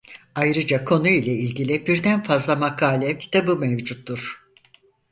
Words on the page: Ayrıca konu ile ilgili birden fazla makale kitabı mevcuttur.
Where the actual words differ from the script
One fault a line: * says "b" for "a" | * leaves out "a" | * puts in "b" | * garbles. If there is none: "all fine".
all fine